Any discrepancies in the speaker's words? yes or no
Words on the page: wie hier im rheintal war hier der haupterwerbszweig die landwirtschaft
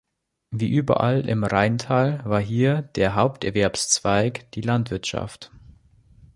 yes